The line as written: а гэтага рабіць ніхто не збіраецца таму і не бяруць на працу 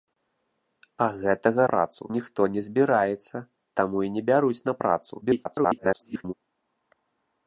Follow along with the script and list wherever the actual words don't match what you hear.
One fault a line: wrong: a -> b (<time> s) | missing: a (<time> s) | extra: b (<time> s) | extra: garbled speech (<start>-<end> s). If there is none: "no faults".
wrong: рабіць -> працу (1.7 s)
extra: garbled speech (5.2-6.3 s)